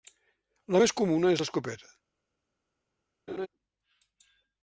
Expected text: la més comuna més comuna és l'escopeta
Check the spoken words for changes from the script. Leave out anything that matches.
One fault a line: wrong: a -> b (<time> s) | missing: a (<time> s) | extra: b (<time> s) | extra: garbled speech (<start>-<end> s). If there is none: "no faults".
missing: més comuna (1.3 s)